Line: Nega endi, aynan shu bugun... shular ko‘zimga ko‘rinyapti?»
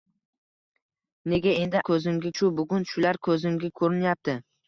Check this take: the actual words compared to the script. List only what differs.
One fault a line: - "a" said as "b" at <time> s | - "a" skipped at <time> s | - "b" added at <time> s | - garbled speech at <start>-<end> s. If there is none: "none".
- "aynan" said as "ko‘zimga" at 1.9 s